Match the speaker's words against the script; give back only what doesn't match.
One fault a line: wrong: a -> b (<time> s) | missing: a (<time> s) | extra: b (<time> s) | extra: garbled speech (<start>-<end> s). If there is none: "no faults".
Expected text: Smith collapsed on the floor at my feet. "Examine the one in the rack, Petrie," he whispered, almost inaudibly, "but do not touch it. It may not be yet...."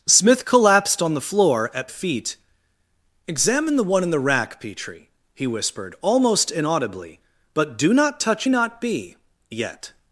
missing: my (1.9 s)
missing: it It may (8.5 s)